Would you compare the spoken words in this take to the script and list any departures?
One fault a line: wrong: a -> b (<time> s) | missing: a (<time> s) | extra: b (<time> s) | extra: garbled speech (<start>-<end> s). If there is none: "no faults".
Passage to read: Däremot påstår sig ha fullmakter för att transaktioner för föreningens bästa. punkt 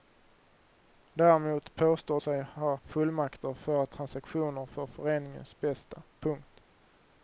no faults